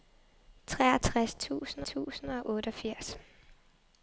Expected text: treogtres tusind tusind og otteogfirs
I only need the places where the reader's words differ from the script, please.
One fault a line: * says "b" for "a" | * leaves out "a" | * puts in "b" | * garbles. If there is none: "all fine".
all fine